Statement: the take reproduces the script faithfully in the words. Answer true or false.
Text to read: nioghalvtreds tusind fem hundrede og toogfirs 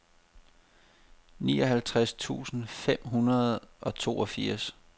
true